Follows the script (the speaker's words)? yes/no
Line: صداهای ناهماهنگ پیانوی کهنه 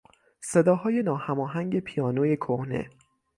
yes